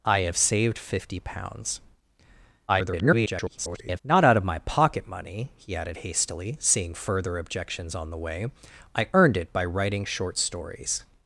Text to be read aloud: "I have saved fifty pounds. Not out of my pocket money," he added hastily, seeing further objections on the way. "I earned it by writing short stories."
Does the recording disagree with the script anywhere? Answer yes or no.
yes